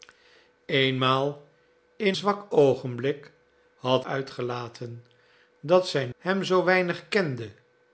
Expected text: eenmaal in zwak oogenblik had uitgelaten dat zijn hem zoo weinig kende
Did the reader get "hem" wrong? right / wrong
right